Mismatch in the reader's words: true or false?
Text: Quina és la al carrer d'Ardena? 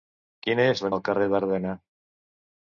false